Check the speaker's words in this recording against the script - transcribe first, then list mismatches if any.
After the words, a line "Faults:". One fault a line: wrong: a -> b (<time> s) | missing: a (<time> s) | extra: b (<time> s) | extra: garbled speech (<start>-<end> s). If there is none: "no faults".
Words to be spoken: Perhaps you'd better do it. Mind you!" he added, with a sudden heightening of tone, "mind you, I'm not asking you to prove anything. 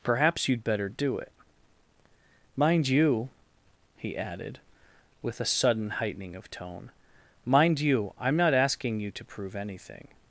Perhaps you'd better do it. Mind you!" he added, with a sudden heightening of tone, "mind you, I'm not asking you to prove anything.
Faults:
no faults